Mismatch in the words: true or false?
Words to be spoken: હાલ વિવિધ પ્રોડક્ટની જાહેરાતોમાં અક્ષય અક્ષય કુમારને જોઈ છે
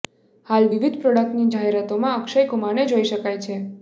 true